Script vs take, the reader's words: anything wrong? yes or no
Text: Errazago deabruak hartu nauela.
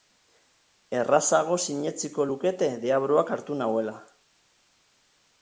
yes